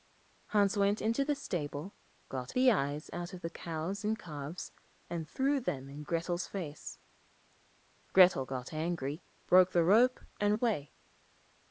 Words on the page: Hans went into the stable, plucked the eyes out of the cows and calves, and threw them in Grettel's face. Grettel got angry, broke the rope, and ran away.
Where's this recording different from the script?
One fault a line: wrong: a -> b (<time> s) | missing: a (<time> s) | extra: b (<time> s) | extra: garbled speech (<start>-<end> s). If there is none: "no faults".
wrong: plucked -> got (2.3 s)
missing: ran (10.5 s)